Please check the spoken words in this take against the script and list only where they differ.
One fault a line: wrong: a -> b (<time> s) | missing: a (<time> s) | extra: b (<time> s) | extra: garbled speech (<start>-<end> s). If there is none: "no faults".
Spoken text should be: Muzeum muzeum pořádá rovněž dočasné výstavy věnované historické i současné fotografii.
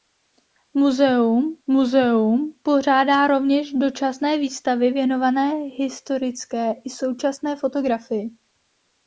no faults